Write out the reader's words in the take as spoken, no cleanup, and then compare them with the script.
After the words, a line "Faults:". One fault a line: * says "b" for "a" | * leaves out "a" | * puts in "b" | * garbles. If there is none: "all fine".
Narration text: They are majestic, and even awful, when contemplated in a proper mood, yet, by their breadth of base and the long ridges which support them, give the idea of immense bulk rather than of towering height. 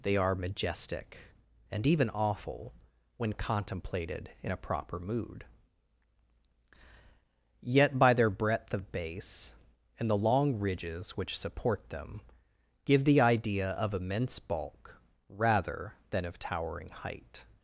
They are majestic, and even awful, when contemplated in a proper mood, yet, by their breadth of base and the long ridges which support them, give the idea of immense bulk rather than of towering height.
Faults:
all fine